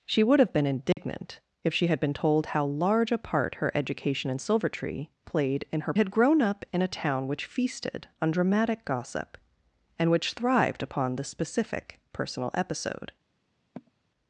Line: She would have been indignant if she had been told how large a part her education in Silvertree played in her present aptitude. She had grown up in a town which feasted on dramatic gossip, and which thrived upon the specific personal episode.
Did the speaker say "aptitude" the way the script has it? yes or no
no